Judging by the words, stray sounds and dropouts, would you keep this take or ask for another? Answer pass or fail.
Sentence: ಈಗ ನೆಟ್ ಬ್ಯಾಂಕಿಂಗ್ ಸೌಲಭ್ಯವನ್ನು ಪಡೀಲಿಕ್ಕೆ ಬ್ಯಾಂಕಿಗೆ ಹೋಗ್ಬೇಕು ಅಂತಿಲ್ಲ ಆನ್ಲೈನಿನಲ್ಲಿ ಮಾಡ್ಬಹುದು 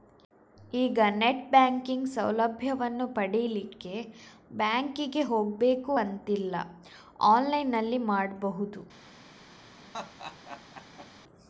fail